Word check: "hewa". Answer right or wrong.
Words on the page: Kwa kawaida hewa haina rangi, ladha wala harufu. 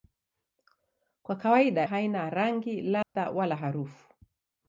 wrong